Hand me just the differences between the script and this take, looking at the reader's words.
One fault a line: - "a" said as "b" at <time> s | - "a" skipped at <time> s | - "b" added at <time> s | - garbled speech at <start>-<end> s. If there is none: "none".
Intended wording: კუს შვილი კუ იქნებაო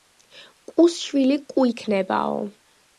none